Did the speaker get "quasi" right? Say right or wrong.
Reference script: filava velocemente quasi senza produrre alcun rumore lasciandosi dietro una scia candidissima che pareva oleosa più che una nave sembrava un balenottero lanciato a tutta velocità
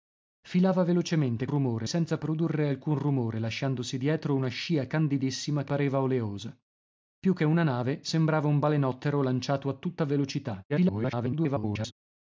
wrong